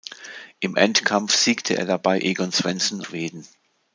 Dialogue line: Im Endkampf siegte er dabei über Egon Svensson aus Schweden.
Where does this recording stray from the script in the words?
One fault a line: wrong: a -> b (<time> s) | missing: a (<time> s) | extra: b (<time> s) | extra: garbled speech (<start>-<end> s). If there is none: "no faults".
missing: über (2.2 s)
missing: aus (3.0 s)